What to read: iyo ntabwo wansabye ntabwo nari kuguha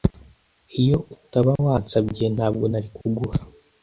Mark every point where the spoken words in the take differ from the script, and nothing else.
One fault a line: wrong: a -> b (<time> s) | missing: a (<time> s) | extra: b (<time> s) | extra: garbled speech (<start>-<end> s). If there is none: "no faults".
wrong: ntabwo -> utaba (1.1 s)